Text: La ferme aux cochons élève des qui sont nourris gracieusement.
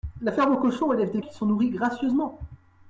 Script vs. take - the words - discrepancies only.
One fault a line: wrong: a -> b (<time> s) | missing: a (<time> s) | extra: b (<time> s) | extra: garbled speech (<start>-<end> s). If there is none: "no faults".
no faults